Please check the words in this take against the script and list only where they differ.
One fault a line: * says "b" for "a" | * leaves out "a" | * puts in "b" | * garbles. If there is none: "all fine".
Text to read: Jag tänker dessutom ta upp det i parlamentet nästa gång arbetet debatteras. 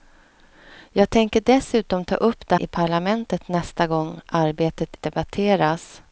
all fine